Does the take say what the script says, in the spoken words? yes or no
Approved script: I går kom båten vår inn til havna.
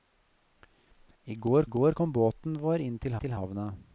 no